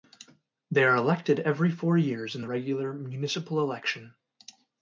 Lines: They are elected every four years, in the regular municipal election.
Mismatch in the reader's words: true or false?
false